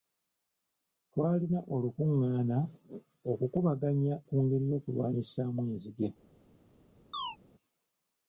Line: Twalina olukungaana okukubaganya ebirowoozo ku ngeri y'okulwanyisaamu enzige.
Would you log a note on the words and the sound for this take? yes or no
yes